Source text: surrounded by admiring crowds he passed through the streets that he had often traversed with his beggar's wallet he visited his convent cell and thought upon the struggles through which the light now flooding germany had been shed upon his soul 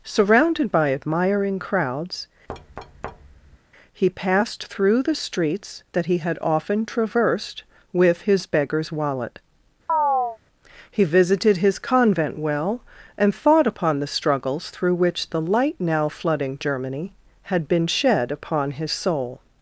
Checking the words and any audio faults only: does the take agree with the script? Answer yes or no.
no